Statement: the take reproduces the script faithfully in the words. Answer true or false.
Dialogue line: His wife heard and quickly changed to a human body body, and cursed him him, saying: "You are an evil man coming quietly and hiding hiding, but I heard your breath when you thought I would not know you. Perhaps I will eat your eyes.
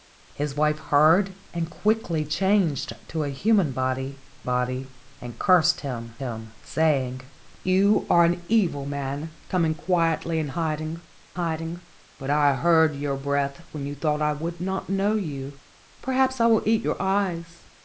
true